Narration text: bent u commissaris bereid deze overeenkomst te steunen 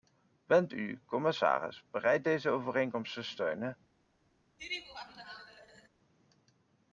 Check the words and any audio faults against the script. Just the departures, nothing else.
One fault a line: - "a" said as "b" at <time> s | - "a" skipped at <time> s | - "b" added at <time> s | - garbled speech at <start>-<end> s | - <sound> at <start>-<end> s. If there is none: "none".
- laugh at 4.6-5.9 s